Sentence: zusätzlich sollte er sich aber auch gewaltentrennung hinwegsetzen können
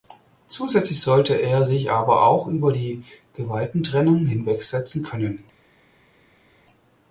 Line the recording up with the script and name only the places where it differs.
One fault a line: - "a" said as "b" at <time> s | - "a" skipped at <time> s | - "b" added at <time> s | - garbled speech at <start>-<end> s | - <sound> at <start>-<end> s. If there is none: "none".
- "über die" added at 2.5 s